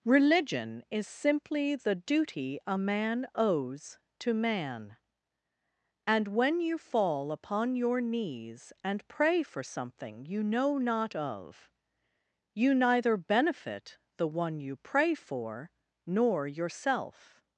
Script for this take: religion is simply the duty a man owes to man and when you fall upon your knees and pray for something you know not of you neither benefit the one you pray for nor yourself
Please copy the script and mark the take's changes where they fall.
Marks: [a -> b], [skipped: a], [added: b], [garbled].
religion is simply the duty a man owes to man and when you fall upon your knees and pray for something you know not of you neither benefit the one you pray for nor yourself